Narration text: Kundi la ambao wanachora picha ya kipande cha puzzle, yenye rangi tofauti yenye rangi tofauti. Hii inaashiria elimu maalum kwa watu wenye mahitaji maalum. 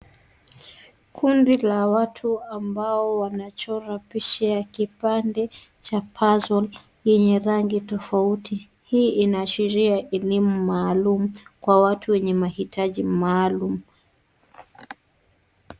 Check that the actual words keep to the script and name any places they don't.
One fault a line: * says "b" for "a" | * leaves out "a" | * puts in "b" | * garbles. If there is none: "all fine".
* puts in "watu"
* leaves out "yenye rangi tofauti"